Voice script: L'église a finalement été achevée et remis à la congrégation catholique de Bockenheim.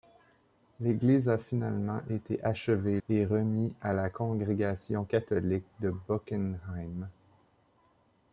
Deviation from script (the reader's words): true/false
false